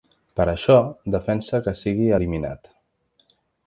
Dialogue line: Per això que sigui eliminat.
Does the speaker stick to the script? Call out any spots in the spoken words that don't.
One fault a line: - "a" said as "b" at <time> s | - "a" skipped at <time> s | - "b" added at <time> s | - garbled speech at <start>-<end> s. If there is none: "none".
- "defensa" added at 1.2 s